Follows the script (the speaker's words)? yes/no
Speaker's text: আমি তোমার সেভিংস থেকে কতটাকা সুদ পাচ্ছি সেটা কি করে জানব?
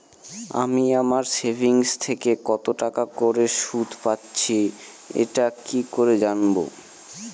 no